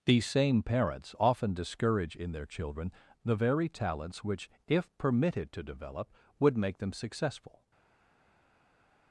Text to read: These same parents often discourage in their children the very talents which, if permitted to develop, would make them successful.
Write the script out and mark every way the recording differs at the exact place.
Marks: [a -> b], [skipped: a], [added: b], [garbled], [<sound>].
These same parents often discourage in their children the very talents which, if permitted to develop, would make them successful.